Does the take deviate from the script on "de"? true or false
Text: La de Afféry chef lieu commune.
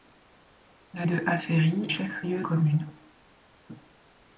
false